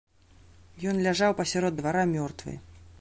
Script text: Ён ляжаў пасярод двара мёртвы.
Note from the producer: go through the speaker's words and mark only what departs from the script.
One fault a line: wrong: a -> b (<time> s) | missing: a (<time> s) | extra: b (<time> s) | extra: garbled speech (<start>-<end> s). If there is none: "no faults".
no faults